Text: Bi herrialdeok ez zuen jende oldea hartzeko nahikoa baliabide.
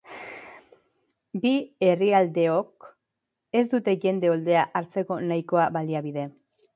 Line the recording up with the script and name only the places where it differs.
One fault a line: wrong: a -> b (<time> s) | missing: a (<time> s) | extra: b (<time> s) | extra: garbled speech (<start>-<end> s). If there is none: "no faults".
wrong: zuen -> dute (3.7 s)